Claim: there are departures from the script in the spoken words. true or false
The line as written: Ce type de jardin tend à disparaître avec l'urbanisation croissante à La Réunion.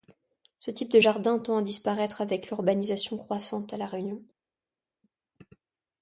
false